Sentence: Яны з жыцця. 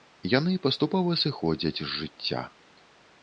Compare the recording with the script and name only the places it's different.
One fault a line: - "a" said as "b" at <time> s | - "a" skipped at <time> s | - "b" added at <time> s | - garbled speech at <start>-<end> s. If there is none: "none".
- "паступова сыходзяць" added at 0.6 s